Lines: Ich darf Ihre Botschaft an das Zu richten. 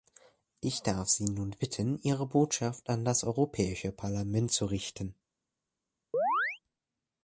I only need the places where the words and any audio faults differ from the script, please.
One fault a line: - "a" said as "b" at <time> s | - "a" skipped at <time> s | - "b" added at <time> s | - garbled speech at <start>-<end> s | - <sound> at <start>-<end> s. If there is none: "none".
- "Sie nun bitten" added at 1.1 s
- "Europäische Parlament" added at 3.2 s
- chirp at 6.1-6.6 s